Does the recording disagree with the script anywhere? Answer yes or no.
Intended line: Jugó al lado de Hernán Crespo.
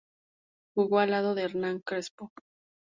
no